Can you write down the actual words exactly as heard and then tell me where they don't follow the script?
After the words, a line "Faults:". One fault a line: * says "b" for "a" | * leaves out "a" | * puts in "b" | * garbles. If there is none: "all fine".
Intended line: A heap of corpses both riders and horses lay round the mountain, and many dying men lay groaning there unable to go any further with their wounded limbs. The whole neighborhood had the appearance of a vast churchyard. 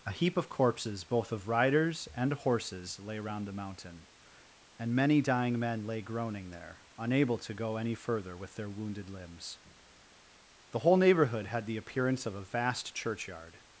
A heap of corpses both of riders and horses lay round the mountain, and many dying men lay groaning there unable to go any further with their wounded limbs. The whole neighborhood had the appearance of a vast churchyard.
Faults:
* puts in "of"